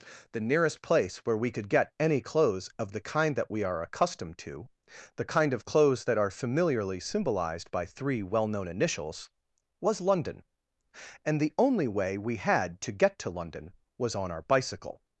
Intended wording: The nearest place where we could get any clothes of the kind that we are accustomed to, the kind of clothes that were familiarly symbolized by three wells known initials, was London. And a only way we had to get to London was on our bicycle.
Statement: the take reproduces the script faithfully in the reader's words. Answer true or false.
false